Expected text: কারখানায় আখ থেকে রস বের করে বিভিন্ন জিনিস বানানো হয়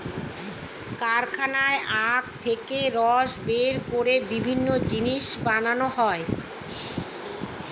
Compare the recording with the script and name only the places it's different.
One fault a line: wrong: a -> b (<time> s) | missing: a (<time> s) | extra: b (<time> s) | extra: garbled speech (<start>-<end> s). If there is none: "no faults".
no faults